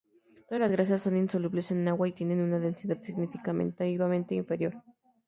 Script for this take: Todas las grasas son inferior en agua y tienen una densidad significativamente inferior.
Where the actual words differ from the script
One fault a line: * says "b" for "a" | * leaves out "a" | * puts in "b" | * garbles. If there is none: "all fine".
* says "insolubles" for "inferior"